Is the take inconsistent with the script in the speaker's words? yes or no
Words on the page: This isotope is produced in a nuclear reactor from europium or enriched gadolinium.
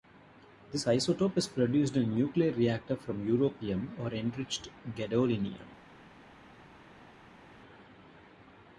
no